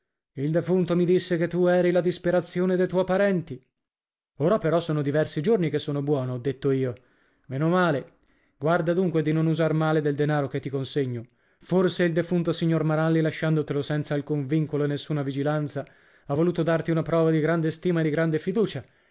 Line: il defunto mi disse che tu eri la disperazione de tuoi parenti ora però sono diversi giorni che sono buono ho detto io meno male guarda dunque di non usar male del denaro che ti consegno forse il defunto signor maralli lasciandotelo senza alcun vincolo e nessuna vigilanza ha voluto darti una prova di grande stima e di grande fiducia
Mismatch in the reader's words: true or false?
false